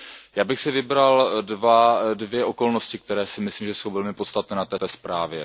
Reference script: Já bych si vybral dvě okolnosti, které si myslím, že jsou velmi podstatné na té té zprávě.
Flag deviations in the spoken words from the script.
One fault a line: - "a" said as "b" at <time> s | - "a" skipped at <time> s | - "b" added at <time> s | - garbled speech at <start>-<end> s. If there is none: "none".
none